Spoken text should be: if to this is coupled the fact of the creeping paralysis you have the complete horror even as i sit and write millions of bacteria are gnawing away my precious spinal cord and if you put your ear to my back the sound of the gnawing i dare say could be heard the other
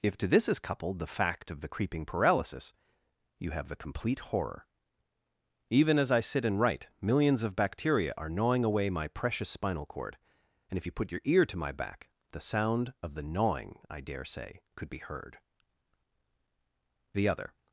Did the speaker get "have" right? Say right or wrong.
right